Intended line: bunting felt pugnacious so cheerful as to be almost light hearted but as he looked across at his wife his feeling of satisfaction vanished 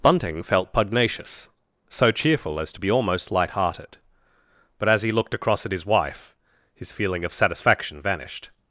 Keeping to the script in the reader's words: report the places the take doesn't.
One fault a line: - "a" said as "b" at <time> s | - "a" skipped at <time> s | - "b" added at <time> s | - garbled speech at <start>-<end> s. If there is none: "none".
none